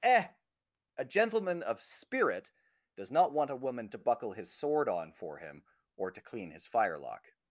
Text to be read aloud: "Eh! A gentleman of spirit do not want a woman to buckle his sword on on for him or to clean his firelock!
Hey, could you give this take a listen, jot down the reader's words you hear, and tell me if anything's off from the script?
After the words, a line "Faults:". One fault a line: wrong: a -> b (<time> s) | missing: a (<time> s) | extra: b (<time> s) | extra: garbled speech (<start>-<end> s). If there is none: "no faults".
"Eh! A gentleman of spirit does not want a woman to buckle his sword on for him or to clean his firelock!
Faults:
wrong: do -> does (3.0 s)
missing: on (5.1 s)